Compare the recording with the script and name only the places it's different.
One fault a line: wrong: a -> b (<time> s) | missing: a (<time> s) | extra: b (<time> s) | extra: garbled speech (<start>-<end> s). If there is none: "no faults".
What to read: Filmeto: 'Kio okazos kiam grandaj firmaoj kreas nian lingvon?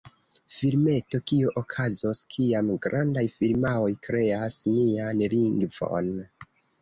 no faults